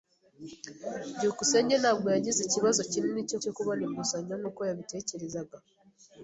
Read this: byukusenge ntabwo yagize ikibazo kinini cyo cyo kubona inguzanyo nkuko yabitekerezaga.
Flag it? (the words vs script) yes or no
no